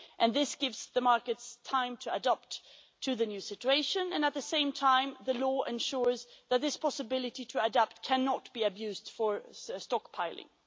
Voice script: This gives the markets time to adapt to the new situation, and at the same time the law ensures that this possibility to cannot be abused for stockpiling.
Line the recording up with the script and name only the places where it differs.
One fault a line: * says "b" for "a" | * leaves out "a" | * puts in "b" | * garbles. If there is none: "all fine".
* puts in "adapt"